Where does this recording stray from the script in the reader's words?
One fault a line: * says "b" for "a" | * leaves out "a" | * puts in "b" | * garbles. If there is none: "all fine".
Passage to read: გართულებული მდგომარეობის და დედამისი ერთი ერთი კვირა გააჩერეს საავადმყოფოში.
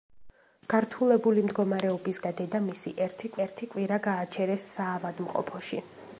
all fine